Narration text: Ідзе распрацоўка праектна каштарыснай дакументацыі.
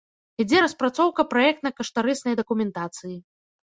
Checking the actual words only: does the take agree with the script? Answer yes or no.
yes